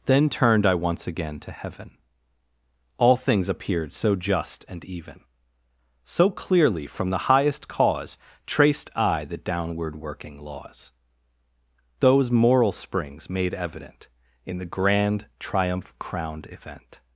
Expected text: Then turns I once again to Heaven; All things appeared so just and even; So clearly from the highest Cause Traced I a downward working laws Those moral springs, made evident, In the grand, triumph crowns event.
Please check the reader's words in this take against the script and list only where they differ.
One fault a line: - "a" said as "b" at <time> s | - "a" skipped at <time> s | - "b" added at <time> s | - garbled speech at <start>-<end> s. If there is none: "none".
- "turns" said as "turned" at 0.3 s
- "a" said as "the" at 9.2 s
- "crowns" said as "crowned" at 16.0 s